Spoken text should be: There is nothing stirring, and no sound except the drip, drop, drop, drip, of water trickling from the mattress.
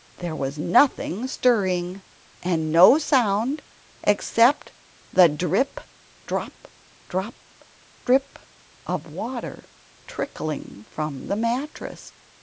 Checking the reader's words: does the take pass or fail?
fail